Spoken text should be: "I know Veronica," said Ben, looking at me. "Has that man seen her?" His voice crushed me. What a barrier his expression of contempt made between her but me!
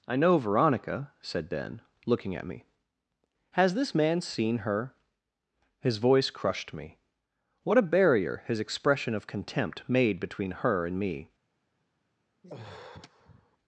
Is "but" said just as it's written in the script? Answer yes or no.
no